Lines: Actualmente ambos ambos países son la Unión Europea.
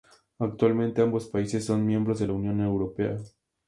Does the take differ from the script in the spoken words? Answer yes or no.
yes